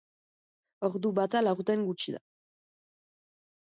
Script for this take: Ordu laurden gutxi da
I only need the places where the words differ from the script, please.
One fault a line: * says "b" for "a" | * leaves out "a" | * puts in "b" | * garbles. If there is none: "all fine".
* puts in "bata"